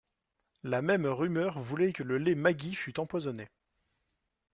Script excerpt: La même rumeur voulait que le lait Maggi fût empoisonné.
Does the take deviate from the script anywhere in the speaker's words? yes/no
no